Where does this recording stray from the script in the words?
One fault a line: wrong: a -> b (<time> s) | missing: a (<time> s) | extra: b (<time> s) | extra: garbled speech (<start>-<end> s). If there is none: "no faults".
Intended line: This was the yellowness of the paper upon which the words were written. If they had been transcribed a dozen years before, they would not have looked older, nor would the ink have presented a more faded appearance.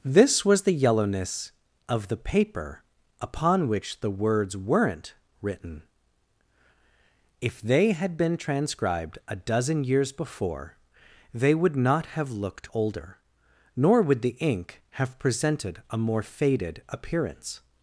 wrong: were -> weren't (4.6 s)